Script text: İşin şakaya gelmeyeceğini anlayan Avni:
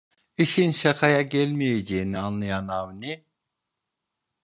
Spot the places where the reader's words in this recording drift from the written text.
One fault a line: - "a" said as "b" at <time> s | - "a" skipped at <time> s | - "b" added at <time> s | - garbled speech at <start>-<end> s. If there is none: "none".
none